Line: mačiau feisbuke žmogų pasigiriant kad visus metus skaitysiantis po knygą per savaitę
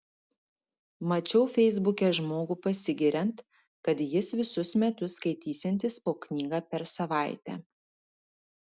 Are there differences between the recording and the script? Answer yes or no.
yes